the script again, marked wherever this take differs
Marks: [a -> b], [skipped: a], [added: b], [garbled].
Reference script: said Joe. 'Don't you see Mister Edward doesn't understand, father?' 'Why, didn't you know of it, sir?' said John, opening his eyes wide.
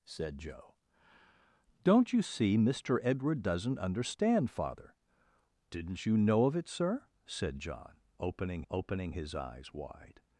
said Joe. 'Don't you see Mister Edward doesn't understand, father?' [skipped: 'Why,] didn't you know of it, sir?' said John, opening [added: opening] his eyes wide.